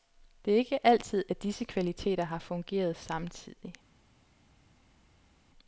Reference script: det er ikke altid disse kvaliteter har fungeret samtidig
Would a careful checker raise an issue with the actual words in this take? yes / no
yes